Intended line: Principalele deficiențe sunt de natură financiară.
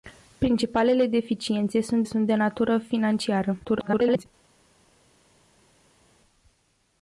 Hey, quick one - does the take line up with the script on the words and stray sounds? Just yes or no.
no